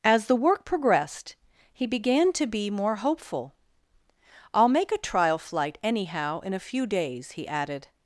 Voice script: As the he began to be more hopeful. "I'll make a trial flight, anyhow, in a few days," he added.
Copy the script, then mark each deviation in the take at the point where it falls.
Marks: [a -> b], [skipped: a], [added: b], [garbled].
As the [added: work progressed] he began to be more hopeful. "I'll make a trial flight, anyhow, in a few days," he added.